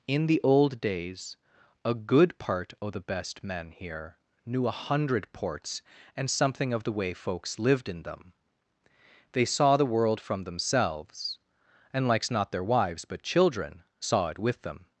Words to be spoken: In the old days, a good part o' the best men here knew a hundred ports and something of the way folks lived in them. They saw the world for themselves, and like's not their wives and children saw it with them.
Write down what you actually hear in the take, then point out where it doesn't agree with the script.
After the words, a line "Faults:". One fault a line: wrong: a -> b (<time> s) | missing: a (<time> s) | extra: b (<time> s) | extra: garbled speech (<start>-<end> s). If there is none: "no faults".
In the old days, a good part o' the best men here knew a hundred ports and something of the way folks lived in them. They saw the world from themselves, and like's not their wives but children saw it with them.
Faults:
wrong: for -> from (10.2 s)
wrong: and -> but (13.1 s)